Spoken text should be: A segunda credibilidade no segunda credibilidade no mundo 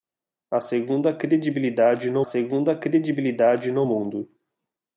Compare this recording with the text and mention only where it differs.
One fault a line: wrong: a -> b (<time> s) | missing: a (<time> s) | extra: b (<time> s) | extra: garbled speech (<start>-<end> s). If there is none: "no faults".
no faults